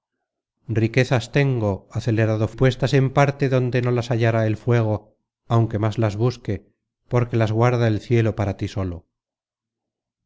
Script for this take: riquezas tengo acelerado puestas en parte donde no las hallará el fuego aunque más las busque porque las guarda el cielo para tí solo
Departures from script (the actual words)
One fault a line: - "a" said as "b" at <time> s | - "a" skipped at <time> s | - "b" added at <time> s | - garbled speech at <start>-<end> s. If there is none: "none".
none